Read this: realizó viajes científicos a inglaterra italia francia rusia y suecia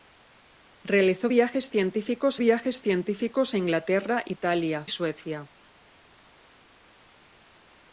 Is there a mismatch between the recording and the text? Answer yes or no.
yes